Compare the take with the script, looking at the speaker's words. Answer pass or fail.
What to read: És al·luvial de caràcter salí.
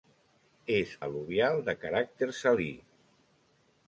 pass